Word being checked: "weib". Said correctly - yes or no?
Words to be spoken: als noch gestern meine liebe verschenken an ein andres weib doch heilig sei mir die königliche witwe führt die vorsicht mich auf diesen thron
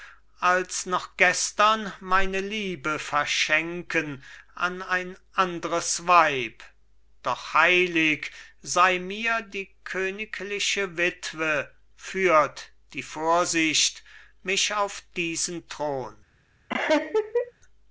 yes